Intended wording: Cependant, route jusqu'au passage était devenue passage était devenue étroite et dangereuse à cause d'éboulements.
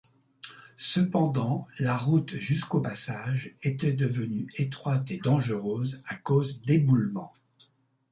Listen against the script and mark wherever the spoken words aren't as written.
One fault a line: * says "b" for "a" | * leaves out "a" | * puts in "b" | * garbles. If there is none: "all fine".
* puts in "la"
* leaves out "passage était devenue"